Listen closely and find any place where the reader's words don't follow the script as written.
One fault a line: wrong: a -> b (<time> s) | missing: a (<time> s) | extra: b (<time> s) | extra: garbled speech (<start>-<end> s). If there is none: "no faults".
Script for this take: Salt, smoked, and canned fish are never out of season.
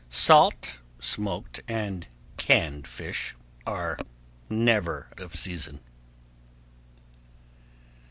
missing: out (5.1 s)